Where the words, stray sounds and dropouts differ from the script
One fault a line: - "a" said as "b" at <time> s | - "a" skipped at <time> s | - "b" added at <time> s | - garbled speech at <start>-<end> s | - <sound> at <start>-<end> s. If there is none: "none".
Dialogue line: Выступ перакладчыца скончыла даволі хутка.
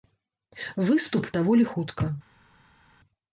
- "перакладчыца скончыла" skipped at 1.3 s